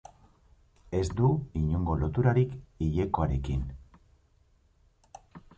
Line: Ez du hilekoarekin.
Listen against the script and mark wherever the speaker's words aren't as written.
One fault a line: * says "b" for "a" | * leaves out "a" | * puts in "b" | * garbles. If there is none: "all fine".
* puts in "inongo loturarik"